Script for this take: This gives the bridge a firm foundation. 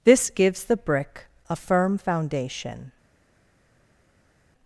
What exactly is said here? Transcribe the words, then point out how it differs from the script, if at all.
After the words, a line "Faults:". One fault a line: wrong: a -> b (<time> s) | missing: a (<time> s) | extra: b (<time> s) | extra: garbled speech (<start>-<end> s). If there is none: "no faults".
This gives the brick a firm foundation.
Faults:
wrong: bridge -> brick (0.8 s)